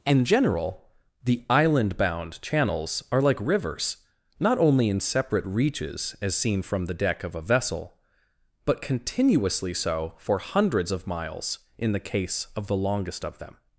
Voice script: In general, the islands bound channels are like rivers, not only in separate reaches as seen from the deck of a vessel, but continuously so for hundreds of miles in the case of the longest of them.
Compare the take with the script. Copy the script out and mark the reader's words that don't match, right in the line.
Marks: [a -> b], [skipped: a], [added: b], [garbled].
In general, the [islands -> island] bound channels are like rivers, not only in separate reaches as seen from the deck of a vessel, but continuously so for hundreds of miles in the case of the longest of them.